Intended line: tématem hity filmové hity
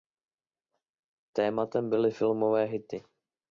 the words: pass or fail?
fail